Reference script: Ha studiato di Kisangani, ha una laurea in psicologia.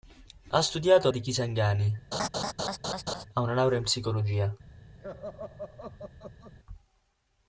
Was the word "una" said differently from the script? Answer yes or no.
no